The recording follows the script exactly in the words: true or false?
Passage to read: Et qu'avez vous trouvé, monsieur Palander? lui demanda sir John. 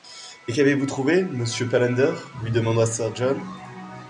true